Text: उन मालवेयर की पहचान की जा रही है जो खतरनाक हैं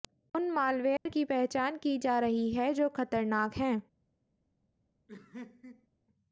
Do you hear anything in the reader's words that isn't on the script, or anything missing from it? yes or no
no